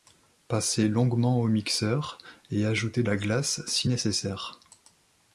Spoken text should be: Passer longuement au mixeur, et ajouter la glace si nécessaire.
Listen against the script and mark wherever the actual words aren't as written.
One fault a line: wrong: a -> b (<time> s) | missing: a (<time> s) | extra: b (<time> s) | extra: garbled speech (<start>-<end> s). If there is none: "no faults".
no faults